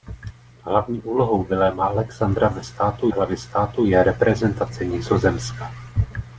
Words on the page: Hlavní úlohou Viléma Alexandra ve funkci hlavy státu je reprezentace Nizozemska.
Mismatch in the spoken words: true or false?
true